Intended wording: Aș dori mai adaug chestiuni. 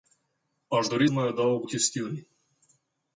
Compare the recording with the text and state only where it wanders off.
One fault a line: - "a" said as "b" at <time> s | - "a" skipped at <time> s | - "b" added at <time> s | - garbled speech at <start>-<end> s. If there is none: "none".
none